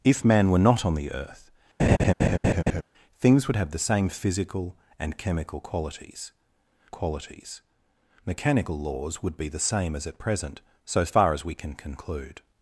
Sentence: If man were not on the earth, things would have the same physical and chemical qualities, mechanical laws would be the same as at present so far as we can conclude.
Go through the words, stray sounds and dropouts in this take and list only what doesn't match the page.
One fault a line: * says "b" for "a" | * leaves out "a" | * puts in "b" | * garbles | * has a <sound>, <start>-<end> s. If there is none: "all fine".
* has a laugh, 1.8-2.8 s
* puts in "qualities"